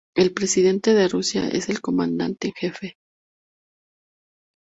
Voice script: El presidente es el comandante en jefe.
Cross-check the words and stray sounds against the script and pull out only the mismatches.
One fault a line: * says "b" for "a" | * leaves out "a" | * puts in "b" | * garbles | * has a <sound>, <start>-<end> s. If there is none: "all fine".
* puts in "de Rusia"